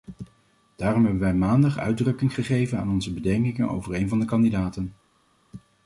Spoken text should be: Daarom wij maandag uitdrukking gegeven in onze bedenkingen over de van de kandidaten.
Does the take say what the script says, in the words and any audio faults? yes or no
no